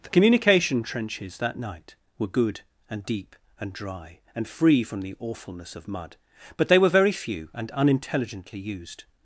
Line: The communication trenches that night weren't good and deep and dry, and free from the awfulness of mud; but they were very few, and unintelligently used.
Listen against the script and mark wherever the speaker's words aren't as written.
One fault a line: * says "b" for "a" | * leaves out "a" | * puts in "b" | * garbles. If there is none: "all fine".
* says "were" for "weren't"